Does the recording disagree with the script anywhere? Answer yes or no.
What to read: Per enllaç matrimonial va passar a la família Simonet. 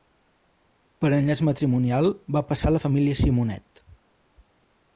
no